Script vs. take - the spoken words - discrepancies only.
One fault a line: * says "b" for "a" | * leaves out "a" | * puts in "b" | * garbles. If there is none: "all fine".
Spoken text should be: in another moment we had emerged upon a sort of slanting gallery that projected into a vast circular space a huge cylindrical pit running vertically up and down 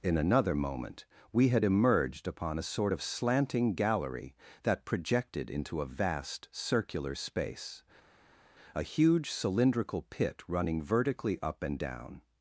all fine